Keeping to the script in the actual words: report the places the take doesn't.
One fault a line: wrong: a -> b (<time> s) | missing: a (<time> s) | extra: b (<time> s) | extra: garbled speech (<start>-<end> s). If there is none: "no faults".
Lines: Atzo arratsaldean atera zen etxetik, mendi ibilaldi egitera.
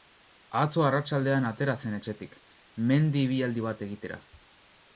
extra: bat (3.7 s)